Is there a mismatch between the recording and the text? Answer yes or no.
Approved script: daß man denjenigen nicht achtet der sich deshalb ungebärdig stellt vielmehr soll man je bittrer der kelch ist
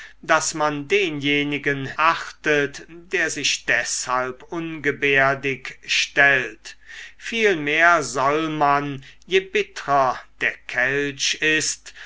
yes